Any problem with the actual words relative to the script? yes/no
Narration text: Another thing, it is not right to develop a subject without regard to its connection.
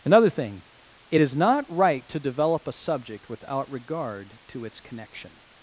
no